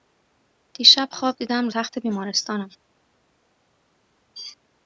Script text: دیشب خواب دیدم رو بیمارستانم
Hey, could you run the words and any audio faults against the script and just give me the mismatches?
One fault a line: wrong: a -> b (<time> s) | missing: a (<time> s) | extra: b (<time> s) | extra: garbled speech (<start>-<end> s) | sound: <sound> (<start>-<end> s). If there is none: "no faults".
extra: تخت (1.7 s)